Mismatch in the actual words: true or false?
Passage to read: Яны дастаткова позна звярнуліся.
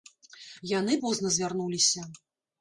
true